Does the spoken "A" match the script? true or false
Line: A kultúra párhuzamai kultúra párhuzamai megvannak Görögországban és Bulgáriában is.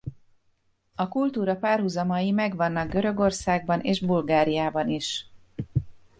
true